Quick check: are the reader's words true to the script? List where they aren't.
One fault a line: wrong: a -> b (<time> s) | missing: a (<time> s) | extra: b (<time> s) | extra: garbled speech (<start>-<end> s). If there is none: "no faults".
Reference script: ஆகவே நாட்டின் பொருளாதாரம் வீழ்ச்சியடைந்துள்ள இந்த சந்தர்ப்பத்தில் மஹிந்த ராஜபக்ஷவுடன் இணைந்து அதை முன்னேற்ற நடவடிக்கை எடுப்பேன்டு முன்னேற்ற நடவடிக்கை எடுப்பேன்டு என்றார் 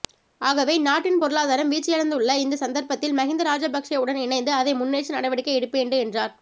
missing: முன்னேற்ற நடவடிக்கை எடுப்பேன்டு (6.0 s)